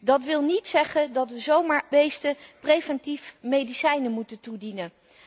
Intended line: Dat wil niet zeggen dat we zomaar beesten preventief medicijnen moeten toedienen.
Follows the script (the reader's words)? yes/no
yes